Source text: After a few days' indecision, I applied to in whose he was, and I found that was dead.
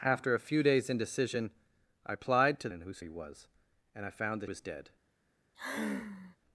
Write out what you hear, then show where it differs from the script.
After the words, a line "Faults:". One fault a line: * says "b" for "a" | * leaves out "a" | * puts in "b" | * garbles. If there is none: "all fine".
After a few days' indecision, I applied to in whose he was, and I found that was dead.
Faults:
all fine